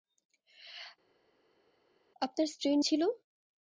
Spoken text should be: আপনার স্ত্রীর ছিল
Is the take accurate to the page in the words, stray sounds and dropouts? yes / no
yes